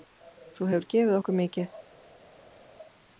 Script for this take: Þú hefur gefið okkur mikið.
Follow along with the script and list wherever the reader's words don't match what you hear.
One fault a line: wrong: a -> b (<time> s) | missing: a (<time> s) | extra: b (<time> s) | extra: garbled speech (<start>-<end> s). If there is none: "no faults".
no faults